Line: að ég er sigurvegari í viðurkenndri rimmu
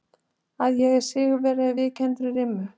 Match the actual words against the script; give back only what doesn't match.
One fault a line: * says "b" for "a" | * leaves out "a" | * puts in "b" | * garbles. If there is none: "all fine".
all fine